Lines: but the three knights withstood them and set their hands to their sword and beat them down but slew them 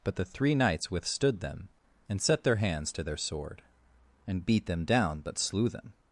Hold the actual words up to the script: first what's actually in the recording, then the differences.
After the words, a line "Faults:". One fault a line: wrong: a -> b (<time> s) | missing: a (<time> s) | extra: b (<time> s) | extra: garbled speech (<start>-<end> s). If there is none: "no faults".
but the three knights withstood them and set their hands to their sword and beat them down but slew them
Faults:
no faults